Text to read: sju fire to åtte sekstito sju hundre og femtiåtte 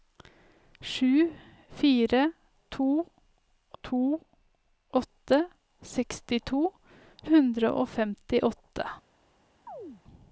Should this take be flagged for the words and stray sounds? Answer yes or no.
yes